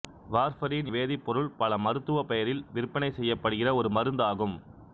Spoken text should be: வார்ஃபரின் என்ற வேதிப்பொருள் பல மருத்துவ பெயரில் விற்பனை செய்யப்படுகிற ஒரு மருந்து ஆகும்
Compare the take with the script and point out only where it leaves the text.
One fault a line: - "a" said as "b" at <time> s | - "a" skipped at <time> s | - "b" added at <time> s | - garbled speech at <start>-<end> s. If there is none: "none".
- "என்ற" skipped at 0.9 s